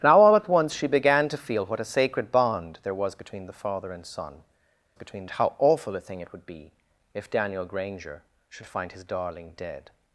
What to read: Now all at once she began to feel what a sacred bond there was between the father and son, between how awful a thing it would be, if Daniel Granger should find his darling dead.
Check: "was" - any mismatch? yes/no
no